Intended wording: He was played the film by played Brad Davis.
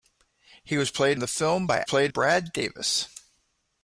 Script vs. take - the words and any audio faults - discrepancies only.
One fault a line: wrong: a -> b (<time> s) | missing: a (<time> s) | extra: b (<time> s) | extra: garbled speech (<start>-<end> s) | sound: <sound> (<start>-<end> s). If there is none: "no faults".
no faults